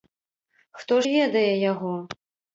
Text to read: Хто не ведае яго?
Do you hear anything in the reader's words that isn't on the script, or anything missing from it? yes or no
no